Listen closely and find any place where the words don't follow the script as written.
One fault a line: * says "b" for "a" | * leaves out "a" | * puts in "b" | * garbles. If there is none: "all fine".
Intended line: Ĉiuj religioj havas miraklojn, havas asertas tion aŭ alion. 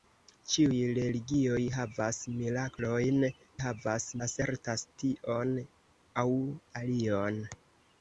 all fine